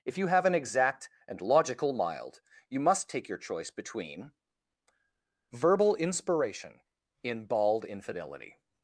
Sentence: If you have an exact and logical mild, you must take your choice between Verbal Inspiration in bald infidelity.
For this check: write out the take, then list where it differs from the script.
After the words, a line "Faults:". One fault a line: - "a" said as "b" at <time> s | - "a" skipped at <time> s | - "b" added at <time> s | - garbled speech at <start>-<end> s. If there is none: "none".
If you have an exact and logical mild, you must take your choice between Verbal Inspiration in bald infidelity.
Faults:
none